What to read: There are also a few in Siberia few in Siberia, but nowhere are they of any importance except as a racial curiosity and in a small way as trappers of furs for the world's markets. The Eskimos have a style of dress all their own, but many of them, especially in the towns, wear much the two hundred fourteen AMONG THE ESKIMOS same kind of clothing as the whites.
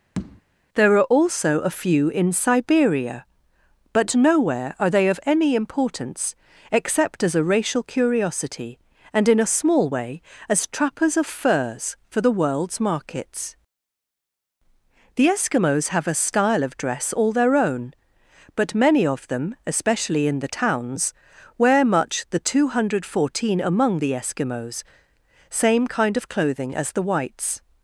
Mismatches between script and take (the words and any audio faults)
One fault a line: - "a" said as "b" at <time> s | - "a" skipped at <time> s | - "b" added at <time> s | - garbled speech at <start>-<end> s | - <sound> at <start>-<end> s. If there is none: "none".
- tap at 0.2-0.4 s
- "few in Siberia" skipped at 3.3 s